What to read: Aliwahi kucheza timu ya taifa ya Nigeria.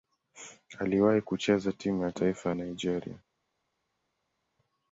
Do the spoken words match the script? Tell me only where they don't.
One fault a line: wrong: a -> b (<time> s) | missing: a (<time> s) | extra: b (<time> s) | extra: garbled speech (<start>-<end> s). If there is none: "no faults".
no faults